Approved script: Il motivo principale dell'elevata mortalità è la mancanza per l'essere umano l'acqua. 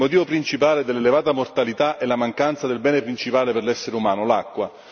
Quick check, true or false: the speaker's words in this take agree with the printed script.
false